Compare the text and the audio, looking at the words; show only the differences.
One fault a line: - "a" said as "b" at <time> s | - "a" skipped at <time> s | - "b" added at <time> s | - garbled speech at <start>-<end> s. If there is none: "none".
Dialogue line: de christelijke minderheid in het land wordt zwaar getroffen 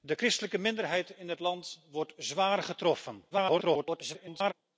- garbled speech at 3.3-4.5 s